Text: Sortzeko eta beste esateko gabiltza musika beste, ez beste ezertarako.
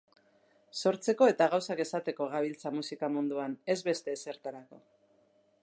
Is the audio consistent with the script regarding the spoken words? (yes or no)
no